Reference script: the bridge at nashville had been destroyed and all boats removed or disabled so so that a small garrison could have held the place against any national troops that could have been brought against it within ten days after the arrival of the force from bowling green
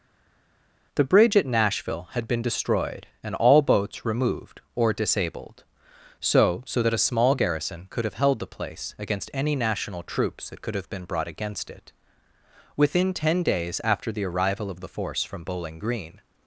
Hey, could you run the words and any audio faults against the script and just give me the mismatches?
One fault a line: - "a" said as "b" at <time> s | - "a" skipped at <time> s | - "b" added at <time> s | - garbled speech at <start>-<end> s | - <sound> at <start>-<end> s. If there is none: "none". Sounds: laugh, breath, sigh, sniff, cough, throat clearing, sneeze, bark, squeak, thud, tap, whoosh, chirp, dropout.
none